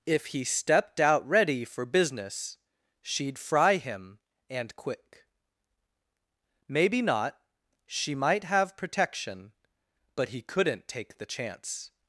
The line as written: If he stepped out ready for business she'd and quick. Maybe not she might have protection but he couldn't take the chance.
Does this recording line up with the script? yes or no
no